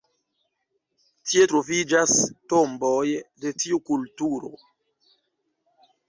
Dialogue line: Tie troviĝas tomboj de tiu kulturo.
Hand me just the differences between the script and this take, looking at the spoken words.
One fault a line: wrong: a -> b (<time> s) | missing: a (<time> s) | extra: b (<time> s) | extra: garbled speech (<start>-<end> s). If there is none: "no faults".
no faults